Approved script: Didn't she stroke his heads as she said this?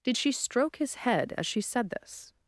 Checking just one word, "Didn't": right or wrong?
wrong